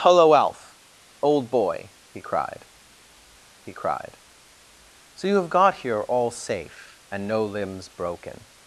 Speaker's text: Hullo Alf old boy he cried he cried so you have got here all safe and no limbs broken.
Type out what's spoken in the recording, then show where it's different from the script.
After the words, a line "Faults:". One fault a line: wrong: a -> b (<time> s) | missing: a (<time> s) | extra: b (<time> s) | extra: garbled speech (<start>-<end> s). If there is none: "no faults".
Hullo Alf old boy he cried he cried so you have got here all safe and no limbs broken.
Faults:
no faults